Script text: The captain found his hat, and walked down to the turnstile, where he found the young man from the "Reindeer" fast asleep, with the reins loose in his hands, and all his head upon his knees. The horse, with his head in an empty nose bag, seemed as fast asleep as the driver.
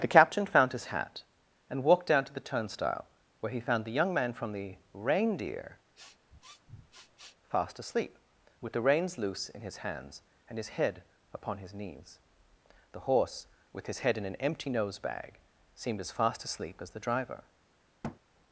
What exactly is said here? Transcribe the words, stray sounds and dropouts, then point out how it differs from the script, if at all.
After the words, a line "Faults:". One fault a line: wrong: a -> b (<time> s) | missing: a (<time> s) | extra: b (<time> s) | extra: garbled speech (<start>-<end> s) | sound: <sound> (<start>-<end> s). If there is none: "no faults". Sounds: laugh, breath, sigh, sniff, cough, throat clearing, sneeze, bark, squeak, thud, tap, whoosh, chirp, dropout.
The captain found his hat, and walked down to the turnstile, where he found the young man from the "Reindeer" fast asleep, with the reins loose in his hands, and his head upon his knees. The horse, with his head in an empty nose bag, seemed as fast asleep as the driver.
Faults:
sound: sniff (5.9-7.4 s)
missing: all (10.6 s)
sound: thud (18.0-18.2 s)